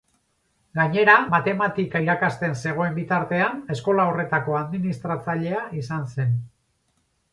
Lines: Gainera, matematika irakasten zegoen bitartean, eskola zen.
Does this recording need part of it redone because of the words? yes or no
yes